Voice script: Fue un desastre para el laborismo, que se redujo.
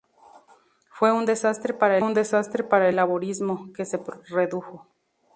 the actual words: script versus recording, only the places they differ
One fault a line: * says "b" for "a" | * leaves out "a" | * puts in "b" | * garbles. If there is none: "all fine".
* puts in "un desastre para"